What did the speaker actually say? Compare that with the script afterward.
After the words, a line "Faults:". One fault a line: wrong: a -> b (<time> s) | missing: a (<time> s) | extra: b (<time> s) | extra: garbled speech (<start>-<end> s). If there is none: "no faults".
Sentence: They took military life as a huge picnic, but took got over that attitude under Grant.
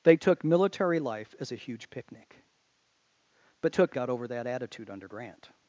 They took military life as a huge picnic, but took got over that attitude under Grant.
Faults:
no faults